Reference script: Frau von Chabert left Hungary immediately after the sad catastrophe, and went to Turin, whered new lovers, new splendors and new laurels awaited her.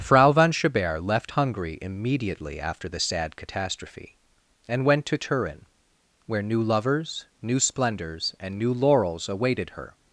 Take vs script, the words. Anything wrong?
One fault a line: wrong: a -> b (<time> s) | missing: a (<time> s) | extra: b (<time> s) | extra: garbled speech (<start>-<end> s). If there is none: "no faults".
wrong: whered -> where (6.3 s)